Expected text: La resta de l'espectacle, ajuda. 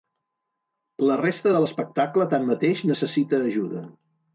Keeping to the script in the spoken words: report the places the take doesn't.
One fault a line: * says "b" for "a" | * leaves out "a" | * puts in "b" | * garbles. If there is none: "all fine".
* puts in "tanmateix necessita"